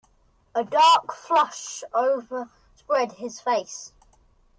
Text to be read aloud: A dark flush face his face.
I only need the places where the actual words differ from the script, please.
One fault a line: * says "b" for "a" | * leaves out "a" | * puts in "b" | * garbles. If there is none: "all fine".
* says "overspread" for "face"